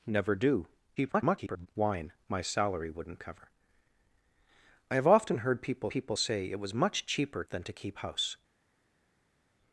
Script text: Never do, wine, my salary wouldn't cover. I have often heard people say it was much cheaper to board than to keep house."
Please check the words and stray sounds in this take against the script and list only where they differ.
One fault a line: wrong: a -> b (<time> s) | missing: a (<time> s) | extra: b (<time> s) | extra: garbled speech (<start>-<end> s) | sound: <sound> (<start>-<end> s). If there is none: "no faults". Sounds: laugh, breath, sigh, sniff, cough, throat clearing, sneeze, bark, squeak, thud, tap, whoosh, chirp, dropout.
extra: garbled speech (1.0-1.7 s)
extra: people (5.9 s)
missing: to board (7.4 s)